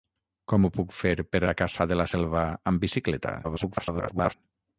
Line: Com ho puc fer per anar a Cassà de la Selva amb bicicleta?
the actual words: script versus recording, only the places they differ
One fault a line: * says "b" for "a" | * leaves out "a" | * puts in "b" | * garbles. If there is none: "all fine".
* leaves out "anar"
* garbles